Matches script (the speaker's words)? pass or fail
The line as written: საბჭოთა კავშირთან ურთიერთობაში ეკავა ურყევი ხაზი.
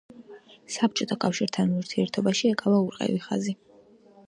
pass